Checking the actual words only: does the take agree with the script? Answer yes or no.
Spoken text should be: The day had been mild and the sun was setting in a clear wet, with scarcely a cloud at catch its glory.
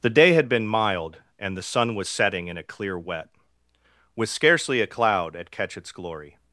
yes